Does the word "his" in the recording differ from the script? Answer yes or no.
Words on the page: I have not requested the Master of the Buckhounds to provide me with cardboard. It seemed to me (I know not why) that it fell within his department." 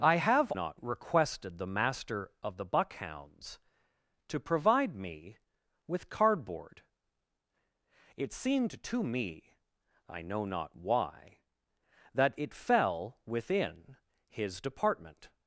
no